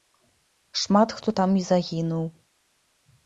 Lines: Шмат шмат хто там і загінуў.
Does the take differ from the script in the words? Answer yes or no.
yes